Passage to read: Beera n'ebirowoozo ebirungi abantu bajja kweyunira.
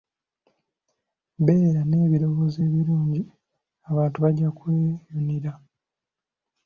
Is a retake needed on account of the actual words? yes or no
no